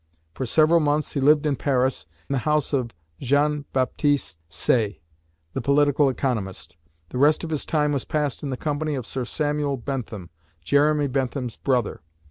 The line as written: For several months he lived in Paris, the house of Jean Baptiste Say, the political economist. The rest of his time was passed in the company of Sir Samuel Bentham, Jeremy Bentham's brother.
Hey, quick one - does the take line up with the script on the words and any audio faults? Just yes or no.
yes